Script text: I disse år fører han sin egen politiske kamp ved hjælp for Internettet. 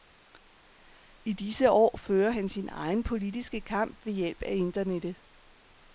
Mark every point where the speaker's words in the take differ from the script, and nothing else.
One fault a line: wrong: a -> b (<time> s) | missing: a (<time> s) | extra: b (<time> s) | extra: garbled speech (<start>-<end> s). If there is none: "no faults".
wrong: for -> af (4.4 s)